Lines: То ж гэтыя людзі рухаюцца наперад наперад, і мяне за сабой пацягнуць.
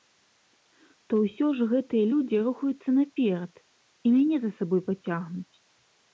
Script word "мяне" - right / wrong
right